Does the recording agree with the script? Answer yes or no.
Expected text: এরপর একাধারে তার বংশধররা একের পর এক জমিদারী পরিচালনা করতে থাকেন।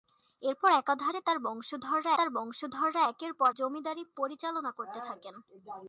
no